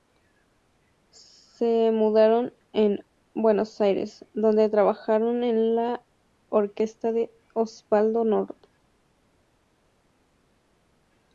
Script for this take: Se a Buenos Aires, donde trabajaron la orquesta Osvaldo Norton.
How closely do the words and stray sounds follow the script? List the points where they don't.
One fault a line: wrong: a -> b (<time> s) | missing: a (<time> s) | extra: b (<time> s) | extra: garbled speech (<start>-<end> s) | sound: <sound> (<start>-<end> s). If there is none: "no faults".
extra: mudaron (1.9 s)
extra: en (5.4 s)
extra: de (7.1 s)